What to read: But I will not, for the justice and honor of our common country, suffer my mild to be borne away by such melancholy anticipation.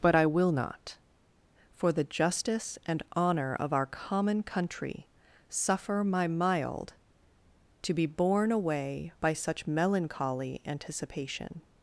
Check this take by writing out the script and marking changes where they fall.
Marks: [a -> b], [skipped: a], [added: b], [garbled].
But I will not, for the justice and honor of our common country, suffer my mild to be borne away by such melancholy anticipation.